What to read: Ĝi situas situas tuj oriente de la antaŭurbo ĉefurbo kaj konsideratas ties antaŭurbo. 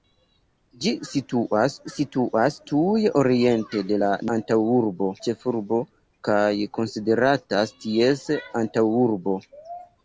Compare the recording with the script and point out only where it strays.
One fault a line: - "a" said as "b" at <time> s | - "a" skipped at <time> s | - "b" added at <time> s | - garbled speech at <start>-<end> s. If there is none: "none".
none